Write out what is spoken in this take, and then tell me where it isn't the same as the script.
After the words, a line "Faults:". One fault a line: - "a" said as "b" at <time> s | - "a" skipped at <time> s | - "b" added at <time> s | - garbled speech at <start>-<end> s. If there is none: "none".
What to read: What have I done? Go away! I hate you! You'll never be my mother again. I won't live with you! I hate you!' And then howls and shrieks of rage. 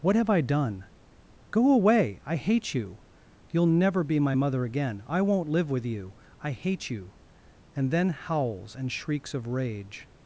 What have I done? Go away! I hate you! You'll never be my mother again. I won't live with you! I hate you!' And then howls and shrieks of rage.
Faults:
none